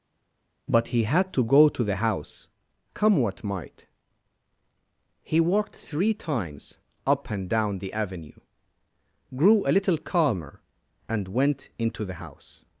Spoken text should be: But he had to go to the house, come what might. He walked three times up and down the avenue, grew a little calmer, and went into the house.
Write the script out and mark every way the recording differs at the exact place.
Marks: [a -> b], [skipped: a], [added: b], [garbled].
But he had to go to the house, come what might. He walked three times up and down the avenue, grew a little calmer, and went into the house.